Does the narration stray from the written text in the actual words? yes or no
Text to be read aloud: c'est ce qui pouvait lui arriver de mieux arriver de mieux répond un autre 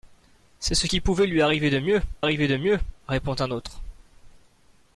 no